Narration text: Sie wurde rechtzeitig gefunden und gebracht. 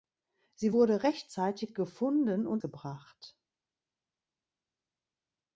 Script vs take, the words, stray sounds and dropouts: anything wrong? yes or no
no